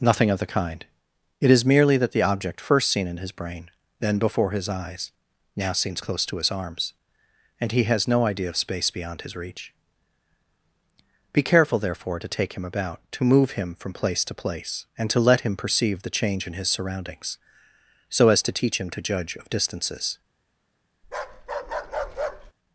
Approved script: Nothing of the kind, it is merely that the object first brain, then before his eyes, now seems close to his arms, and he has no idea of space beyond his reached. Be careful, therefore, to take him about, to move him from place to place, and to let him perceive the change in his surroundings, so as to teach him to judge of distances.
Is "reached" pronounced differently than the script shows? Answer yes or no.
yes